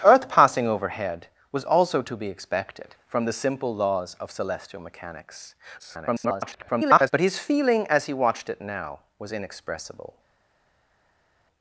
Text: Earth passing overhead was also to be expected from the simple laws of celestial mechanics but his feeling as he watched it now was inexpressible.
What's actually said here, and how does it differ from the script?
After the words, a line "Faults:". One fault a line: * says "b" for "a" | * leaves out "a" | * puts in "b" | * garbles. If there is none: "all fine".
Earth passing overhead was also to be expected from the simple laws of celestial mechanics [garbled] but his feeling as he watched it now was inexpressible.
Faults:
* garbles